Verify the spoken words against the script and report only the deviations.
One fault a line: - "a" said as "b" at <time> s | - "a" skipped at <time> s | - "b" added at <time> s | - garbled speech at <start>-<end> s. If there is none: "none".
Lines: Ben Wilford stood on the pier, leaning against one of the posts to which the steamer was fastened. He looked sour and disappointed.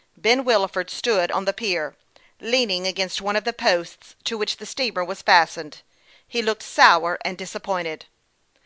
none